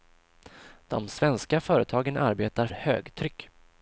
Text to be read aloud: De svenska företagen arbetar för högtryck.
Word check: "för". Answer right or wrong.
wrong